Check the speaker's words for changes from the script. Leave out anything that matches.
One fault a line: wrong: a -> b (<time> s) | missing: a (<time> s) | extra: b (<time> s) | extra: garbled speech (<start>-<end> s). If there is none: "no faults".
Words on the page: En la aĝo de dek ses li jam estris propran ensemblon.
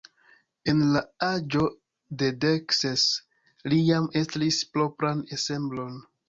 no faults